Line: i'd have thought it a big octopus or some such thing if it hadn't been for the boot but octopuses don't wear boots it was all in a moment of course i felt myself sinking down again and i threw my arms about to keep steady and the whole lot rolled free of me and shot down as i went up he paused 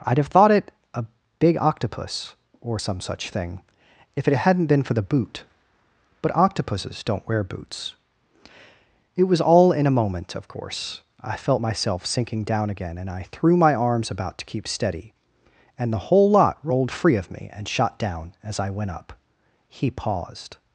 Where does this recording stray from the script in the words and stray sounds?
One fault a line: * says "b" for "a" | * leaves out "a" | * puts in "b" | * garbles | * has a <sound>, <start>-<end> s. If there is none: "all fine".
all fine